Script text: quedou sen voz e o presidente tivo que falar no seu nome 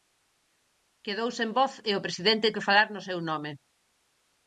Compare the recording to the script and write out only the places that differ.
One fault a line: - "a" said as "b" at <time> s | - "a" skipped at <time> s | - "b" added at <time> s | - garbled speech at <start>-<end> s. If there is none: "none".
- "tivo" skipped at 2.5 s